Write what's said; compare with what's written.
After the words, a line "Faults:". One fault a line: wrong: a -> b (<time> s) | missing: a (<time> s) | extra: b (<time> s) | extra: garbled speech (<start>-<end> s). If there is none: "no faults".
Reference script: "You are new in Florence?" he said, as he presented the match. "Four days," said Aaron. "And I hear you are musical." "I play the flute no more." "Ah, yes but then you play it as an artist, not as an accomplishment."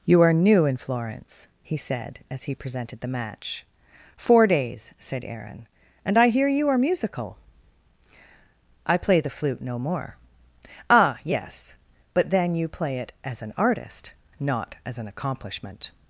"You are new in Florence?" he said, as he presented the match. "Four days," said Aaron. "And I hear you are musical." "I play the flute no more." "Ah, yes but then you play it as an artist, not as an accomplishment."
Faults:
no faults